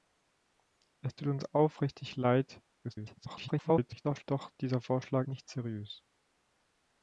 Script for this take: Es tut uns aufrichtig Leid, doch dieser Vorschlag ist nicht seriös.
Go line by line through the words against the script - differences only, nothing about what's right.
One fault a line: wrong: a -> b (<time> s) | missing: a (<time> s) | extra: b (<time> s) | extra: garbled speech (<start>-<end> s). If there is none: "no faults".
extra: garbled speech (2.8-4.2 s)
missing: ist (5.3 s)